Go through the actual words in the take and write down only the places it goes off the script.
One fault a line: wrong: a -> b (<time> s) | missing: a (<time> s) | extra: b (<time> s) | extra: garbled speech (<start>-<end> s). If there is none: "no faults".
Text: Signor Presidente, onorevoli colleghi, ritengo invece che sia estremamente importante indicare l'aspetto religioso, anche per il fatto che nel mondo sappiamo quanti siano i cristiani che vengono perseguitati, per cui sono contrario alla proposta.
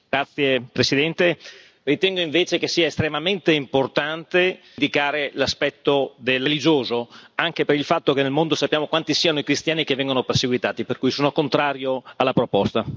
no faults